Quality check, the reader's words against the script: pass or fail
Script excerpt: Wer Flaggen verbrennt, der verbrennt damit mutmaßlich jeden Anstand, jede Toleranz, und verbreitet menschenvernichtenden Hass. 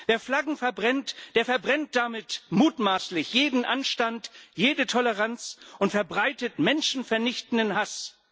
pass